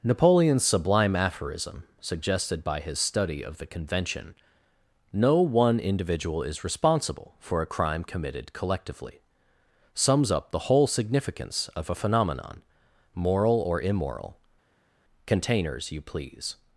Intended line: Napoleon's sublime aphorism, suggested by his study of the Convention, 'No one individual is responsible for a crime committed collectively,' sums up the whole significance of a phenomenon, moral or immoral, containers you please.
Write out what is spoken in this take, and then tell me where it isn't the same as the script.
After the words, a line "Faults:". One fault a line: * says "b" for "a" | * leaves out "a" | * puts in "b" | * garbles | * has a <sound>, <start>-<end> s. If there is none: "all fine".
Napoleon's sublime aphorism, suggested by his study of the Convention, 'No one individual is responsible for a crime committed collectively,' sums up the whole significance of a phenomenon, moral or immoral, containers you please.
Faults:
all fine